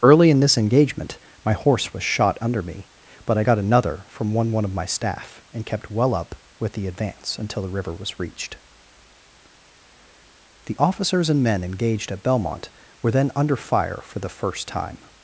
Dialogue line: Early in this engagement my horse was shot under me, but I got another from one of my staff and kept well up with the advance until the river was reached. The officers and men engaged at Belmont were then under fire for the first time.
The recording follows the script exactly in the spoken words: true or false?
false